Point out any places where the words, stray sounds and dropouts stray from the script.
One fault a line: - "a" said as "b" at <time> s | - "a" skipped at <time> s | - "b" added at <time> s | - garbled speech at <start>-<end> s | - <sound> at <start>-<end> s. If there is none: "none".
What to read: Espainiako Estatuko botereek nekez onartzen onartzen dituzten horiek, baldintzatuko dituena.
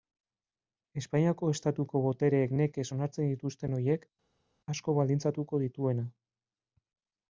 - "onartzen" skipped at 3.3 s
- "asko" added at 4.7 s